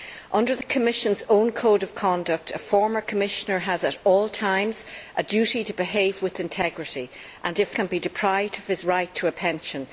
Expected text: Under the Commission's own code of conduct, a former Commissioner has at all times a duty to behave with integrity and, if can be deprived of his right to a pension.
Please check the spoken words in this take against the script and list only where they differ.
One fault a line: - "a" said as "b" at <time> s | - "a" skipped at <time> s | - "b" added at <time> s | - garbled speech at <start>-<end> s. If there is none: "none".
none